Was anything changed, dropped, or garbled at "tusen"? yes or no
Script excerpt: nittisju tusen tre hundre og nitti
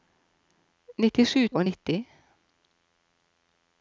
yes